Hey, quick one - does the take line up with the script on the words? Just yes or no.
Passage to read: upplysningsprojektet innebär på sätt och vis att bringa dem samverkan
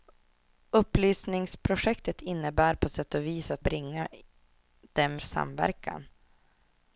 yes